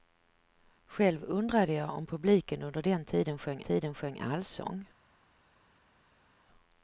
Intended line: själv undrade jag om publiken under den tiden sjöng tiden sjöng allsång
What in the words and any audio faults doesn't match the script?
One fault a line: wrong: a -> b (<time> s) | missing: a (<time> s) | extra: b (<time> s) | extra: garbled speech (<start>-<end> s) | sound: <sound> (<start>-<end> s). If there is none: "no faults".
no faults